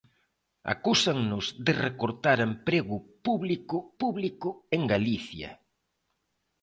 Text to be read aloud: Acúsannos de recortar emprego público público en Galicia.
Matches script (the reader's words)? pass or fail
pass